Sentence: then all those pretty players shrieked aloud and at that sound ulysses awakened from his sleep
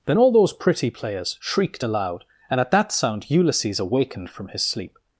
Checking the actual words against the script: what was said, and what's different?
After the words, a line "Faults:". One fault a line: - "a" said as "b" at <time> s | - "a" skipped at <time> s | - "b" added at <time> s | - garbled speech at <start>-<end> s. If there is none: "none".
then all those pretty players shrieked aloud and at that sound ulysses awakened from his sleep
Faults:
none